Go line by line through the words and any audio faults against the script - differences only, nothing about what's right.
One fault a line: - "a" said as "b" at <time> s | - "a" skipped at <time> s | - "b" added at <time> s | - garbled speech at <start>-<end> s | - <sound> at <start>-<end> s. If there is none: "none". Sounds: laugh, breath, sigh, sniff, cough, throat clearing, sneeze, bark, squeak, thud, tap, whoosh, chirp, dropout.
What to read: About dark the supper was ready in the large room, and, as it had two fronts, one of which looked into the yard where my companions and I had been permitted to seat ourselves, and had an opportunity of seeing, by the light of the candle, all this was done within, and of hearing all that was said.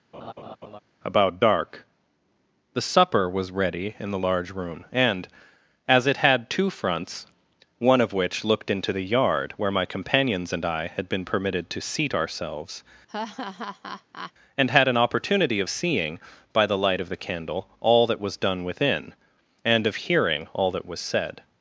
- laugh at 0.1-0.8 s
- laugh at 13.1-14.3 s
- "this" said as "that" at 18.0 s